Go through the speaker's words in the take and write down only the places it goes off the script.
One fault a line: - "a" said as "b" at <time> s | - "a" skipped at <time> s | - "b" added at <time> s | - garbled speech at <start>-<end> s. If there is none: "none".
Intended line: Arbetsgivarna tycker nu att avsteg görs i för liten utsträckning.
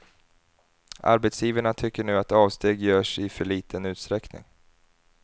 none